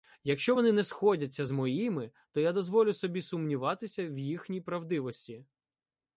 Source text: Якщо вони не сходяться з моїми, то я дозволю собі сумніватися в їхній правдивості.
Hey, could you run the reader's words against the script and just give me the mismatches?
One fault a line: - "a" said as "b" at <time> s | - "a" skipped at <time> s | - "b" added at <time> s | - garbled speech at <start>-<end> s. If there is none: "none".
none